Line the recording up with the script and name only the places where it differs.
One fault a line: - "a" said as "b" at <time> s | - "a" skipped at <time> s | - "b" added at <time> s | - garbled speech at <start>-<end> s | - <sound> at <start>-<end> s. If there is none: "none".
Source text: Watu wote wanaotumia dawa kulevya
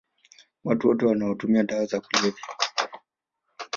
- "za" added at 1.9 s